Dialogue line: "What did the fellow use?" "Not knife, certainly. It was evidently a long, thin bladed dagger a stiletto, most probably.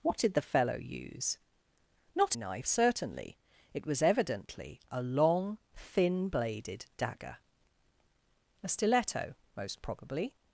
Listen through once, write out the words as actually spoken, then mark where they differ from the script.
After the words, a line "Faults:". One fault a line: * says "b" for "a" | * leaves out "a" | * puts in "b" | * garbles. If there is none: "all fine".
"What did the fellow use?" "Not knife, certainly. It was evidently a long, thin bladed dagger a stiletto, most probably.
Faults:
all fine